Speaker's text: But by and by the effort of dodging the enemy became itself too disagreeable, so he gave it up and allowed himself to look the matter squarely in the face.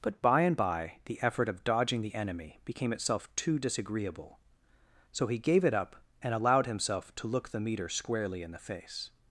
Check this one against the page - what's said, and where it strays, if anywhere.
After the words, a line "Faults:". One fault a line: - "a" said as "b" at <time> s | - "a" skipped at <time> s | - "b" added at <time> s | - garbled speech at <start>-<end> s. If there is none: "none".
But by and by the effort of dodging the enemy became itself too disagreeable, so he gave it up and allowed himself to look the meter squarely in the face.
Faults:
- "matter" said as "meter" at 7.6 s